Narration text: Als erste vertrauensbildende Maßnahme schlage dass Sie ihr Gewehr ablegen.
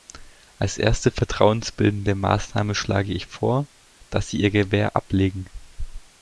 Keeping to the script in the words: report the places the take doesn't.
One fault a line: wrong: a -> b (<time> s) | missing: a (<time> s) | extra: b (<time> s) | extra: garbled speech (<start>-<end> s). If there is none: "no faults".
extra: ich vor (3.1 s)